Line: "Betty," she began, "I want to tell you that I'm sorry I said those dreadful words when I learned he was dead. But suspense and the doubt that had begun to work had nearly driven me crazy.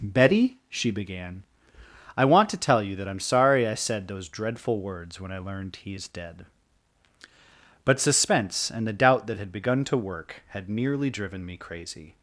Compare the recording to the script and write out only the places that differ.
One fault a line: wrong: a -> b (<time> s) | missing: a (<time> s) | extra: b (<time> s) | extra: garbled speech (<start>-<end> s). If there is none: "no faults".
wrong: was -> is (5.9 s)